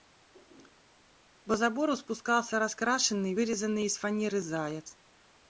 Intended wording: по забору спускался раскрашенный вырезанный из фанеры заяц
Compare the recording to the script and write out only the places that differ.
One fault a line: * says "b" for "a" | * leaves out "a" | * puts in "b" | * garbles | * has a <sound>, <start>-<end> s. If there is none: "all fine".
all fine